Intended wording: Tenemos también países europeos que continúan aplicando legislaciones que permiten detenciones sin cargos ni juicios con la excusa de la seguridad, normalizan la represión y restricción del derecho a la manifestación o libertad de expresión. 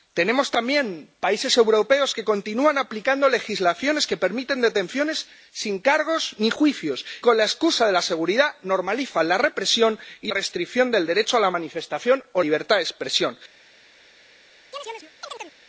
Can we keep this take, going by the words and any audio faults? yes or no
no